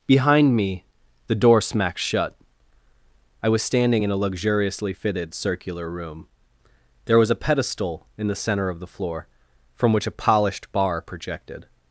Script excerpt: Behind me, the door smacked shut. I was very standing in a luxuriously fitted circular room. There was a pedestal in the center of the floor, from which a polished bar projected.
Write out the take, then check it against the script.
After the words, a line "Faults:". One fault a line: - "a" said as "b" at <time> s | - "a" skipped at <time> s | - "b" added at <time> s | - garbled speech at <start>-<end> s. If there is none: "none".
Behind me, the door smacked shut. I was standing in a luxuriously fitted circular room. There was a pedestal in the center of the floor, from which a polished bar projected.
Faults:
- "very" skipped at 3.6 s